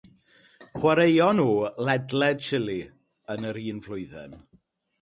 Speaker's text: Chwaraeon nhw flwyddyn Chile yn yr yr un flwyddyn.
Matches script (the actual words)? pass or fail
fail